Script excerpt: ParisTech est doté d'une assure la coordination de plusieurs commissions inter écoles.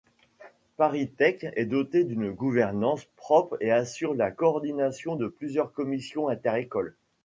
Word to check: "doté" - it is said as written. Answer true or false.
true